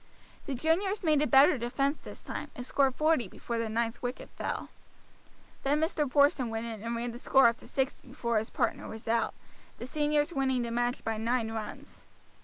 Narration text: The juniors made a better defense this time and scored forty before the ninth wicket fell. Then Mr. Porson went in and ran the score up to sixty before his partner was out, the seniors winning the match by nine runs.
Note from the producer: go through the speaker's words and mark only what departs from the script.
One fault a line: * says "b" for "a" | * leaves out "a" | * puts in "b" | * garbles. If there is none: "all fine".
all fine